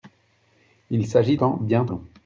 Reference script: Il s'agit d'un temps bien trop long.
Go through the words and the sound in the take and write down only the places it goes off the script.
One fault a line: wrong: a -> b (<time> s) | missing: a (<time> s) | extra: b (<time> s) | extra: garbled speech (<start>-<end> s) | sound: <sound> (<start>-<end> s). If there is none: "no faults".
missing: d'un (1.4 s)
missing: trop (1.9 s)